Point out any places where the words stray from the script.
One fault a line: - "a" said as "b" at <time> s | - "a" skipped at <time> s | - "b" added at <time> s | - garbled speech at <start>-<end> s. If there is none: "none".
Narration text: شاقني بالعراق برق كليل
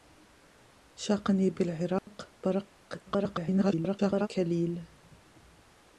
- garbled speech at 3.1-4.3 s